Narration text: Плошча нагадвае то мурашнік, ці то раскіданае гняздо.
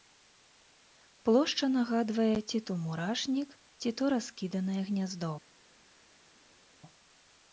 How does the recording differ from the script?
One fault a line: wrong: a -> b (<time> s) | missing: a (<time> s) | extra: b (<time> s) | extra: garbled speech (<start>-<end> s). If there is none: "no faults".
extra: ці (2.5 s)